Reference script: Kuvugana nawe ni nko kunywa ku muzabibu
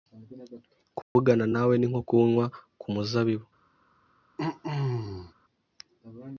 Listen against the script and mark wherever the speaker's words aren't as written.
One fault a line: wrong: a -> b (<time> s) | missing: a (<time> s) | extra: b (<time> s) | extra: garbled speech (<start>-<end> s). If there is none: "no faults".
no faults